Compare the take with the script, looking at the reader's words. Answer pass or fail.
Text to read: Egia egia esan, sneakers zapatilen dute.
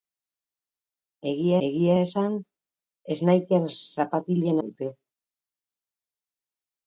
pass